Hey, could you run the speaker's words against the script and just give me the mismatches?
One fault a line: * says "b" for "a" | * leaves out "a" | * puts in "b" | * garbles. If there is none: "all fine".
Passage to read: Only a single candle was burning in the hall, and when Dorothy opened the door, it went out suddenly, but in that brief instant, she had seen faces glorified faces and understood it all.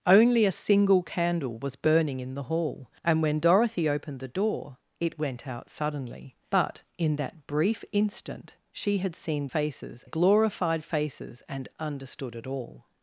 all fine